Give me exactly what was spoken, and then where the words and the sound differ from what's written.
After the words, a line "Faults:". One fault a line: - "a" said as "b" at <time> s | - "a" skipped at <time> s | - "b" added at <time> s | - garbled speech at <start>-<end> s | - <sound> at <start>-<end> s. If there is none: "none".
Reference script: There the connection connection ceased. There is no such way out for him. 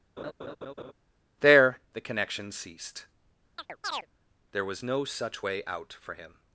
There the connection ceased. There was no such way out for him.
Faults:
- laugh at 0.2-0.9 s
- "connection" skipped at 2.5 s
- chirp at 3.6-4.1 s
- "is" said as "was" at 4.6 s